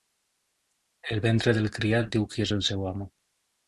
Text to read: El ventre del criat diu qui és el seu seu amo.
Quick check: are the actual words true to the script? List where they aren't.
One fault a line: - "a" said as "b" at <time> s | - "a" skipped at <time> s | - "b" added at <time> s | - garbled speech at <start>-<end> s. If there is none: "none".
- "seu" skipped at 2.9 s